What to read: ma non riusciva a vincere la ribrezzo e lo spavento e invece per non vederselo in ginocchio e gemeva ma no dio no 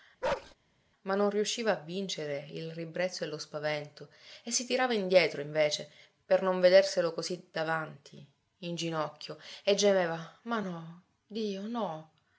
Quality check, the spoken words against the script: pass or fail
fail